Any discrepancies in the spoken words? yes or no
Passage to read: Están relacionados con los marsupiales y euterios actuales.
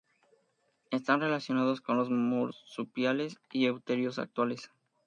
no